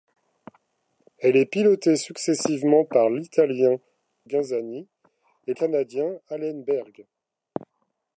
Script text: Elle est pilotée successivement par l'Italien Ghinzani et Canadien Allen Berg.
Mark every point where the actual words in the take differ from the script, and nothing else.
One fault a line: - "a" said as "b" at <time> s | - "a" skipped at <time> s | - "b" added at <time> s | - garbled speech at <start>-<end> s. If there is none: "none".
none